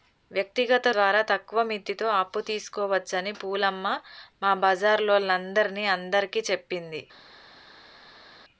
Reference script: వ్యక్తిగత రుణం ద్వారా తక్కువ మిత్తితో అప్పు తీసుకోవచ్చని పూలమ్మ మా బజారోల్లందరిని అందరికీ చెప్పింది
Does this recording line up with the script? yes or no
no